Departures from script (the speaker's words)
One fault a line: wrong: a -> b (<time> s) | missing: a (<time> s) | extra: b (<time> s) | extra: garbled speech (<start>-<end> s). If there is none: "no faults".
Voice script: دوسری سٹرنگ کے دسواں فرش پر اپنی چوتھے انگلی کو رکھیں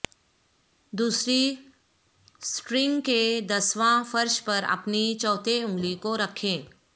no faults